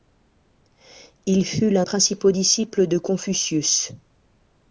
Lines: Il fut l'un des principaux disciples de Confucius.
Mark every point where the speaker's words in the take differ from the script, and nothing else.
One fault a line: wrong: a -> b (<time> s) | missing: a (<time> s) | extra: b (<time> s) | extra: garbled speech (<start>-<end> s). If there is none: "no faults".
missing: des (1.9 s)